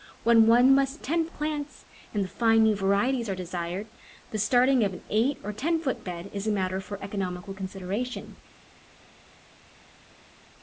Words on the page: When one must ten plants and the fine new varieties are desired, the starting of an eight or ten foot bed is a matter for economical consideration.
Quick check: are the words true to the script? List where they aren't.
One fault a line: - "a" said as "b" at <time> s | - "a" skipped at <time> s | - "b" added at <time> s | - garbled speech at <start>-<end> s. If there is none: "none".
none